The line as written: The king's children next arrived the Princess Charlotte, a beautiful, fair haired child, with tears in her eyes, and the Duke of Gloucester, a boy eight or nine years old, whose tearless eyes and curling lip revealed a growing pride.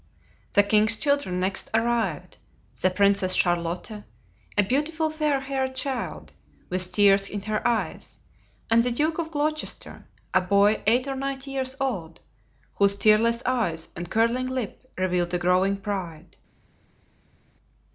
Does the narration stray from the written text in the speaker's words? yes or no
no